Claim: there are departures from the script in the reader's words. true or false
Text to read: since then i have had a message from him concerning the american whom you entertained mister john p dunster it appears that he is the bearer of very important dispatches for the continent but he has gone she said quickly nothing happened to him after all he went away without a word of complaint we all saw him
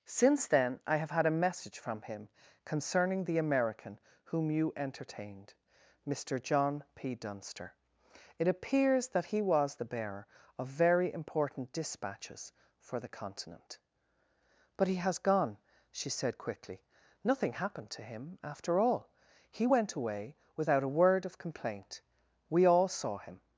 true